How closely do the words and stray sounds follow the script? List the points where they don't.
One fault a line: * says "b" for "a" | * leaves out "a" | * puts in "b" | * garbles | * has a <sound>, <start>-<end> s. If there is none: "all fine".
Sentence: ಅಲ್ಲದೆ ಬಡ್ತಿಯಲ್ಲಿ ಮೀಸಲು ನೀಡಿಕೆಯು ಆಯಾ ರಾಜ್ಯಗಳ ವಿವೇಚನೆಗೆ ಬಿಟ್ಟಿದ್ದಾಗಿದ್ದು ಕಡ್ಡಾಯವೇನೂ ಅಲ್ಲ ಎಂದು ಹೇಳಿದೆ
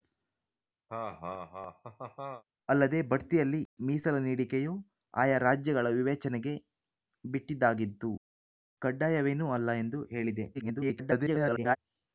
* has a laugh, 0.9-2.4 s
* garbles